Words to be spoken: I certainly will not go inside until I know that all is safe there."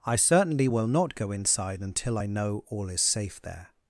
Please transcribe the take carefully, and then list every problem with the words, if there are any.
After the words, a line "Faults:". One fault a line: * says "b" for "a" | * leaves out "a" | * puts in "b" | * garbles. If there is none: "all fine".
I certainly will not go inside until I know all is safe there."
Faults:
* leaves out "that"